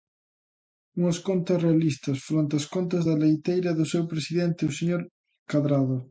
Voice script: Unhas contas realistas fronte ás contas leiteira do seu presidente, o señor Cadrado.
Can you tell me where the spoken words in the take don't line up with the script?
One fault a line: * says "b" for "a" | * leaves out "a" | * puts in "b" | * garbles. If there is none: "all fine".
* puts in "da"